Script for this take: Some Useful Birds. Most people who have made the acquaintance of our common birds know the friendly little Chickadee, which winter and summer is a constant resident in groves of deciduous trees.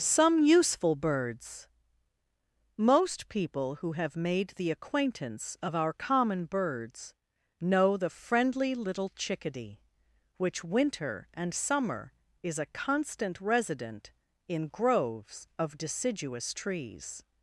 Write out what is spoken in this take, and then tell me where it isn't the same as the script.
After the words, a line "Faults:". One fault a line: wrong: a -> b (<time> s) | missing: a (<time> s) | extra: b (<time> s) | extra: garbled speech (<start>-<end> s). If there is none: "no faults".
Some Useful Birds. Most people who have made the acquaintance of our common birds know the friendly little Chickadee, which winter and summer is a constant resident in groves of deciduous trees.
Faults:
no faults